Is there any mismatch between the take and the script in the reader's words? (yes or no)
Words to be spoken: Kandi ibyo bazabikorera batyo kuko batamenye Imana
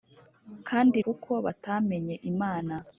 yes